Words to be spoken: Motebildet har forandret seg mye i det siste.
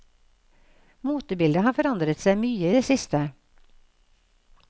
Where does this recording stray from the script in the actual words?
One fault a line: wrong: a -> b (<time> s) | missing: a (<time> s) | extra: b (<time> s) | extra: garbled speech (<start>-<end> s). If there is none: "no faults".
no faults